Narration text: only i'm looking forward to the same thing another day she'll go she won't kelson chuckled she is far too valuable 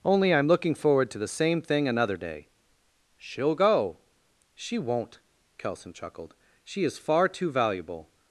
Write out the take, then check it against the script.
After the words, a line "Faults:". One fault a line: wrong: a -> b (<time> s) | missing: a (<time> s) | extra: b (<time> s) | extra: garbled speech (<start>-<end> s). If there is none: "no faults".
only i'm looking forward to the same thing another day she'll go she won't kelson chuckled she is far too valuable
Faults:
no faults